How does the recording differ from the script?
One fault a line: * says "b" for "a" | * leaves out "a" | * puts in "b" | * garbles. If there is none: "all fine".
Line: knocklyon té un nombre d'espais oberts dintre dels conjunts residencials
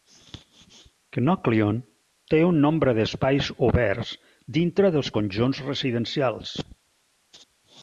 all fine